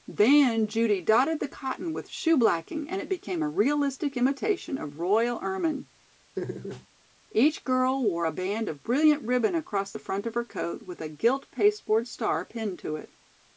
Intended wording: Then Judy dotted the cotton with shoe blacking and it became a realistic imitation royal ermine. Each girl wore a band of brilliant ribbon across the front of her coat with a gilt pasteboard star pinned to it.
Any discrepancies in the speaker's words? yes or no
yes